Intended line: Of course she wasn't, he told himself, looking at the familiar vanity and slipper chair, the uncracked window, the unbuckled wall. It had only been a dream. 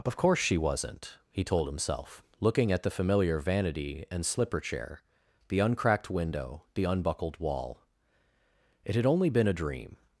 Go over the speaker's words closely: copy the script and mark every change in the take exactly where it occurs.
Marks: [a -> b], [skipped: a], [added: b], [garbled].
Of course she wasn't, he told himself, looking at the familiar vanity and slipper chair, the uncracked window, the unbuckled wall. It had only been a dream.